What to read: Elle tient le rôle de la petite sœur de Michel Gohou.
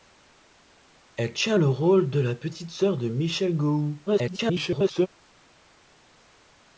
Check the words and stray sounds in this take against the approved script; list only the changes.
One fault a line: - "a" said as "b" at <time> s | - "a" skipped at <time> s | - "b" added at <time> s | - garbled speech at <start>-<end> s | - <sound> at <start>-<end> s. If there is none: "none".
- garbled speech at 4.1-5.1 s